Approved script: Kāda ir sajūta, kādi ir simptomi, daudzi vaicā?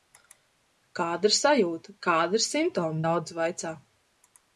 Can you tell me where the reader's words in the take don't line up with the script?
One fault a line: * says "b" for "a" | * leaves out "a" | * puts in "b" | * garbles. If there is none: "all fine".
all fine